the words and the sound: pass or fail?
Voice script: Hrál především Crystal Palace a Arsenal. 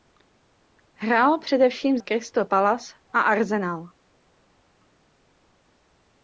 pass